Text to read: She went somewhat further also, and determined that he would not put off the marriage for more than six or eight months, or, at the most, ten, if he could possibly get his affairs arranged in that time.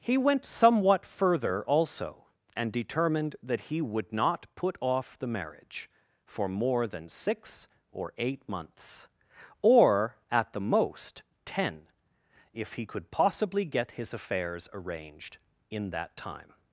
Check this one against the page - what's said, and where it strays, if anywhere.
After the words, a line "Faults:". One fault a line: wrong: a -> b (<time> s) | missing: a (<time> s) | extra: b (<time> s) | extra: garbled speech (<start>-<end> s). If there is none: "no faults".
He went somewhat further also, and determined that he would not put off the marriage for more than six or eight months, or, at the most, ten, if he could possibly get his affairs arranged in that time.
Faults:
wrong: She -> He (0.0 s)